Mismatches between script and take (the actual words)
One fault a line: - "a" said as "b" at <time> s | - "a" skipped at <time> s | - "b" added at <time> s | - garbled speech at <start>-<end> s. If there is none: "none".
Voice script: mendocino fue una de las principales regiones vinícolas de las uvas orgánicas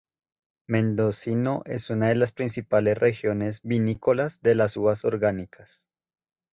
- "fue" said as "es" at 1.6 s